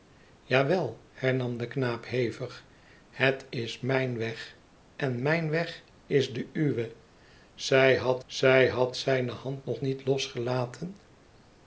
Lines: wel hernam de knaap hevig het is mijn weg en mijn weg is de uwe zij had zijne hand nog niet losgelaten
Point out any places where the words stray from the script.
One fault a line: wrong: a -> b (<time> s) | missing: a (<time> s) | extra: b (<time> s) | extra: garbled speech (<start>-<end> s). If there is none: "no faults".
extra: zij had (8.2 s)